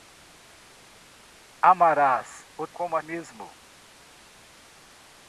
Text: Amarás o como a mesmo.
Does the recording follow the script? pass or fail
pass